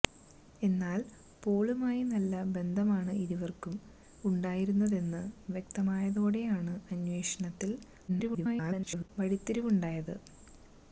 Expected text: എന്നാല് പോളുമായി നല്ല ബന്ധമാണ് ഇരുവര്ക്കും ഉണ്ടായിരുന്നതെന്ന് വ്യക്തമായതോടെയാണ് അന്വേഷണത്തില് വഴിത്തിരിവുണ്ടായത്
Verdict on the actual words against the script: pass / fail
fail